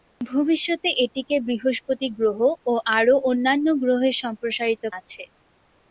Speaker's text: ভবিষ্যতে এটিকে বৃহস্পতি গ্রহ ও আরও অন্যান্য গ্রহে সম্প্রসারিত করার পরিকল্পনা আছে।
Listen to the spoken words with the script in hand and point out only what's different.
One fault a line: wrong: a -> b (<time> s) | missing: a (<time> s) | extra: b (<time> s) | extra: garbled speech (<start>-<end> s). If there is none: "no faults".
missing: করার পরিকল্পনা (4.8 s)